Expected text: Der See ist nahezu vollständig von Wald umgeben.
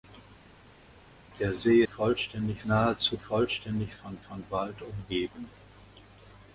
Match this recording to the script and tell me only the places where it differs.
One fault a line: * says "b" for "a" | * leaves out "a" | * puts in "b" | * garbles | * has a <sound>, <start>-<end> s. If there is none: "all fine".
* says "vollständig" for "ist"
* puts in "von"